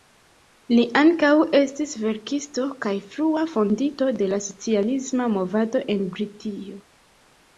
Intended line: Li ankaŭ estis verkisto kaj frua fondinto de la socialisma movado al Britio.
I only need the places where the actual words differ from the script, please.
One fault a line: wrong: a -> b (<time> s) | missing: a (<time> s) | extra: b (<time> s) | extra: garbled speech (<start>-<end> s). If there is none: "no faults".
wrong: al -> en (6.0 s)